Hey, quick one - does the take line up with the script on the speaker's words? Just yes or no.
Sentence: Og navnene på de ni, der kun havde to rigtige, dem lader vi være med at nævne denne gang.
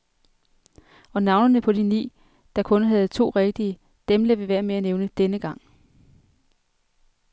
yes